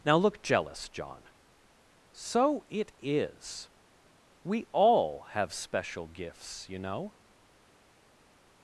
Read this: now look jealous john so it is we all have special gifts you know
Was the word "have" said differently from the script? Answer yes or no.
no